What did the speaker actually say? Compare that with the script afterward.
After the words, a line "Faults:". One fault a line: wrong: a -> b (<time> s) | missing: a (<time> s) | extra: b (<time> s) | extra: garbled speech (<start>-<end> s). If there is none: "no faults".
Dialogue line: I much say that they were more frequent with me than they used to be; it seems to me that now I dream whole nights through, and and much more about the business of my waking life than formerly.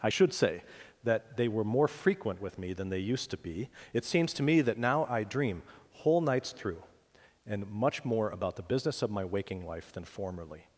I should say that they were more frequent with me than they used to be; it seems to me that now I dream whole nights through, and much more about the business of my waking life than formerly.
Faults:
wrong: much -> should (0.1 s)
missing: and (7.7 s)